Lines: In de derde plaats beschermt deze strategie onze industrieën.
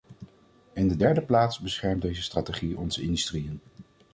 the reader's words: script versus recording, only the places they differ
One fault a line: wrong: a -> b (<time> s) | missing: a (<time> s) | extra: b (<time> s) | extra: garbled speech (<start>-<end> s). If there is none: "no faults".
no faults